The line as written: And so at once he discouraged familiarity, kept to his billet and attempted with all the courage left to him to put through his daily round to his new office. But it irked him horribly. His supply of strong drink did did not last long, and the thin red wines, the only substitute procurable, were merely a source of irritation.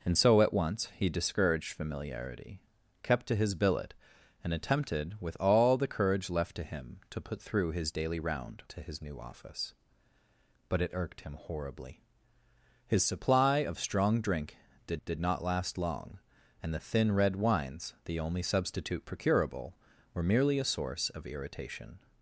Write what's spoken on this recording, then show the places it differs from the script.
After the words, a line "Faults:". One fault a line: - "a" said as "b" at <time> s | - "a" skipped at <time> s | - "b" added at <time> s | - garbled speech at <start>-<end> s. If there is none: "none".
And so at once he discouraged familiarity, kept to his billet and attempted with all the courage left to him to put through his daily round to his new office. But it irked him horribly. His supply of strong drink did did not last long, and the thin red wines, the only substitute procurable, were merely a source of irritation.
Faults:
none